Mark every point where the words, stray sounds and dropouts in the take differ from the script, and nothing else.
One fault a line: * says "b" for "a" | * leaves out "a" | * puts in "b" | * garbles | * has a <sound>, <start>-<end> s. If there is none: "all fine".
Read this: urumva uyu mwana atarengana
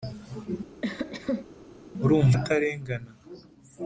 * has a cough, 0.8-1.5 s
* leaves out "uyu mwana"